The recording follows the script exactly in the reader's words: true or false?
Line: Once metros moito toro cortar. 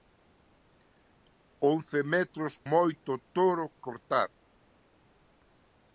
true